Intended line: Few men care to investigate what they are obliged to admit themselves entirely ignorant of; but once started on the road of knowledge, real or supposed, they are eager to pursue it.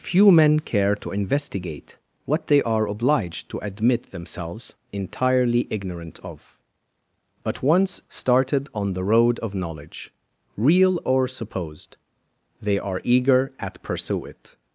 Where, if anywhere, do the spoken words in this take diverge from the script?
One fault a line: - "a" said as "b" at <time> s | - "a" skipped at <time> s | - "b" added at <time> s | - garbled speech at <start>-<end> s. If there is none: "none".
- "to" said as "at" at 13.6 s